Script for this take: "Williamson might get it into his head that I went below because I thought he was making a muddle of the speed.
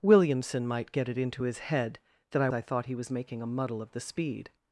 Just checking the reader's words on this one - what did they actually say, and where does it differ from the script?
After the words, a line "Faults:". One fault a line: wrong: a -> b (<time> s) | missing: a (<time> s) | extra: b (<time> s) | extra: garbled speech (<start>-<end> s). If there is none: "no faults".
"Williamson might get it into his head that I I thought he was making a muddle of the speed.
Faults:
missing: went below because (2.5 s)